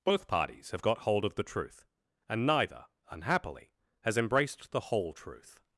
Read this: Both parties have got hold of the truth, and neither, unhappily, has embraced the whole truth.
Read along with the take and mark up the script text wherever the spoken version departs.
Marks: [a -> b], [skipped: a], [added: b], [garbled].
Both parties have got hold of the truth, and neither, unhappily, has embraced the whole truth.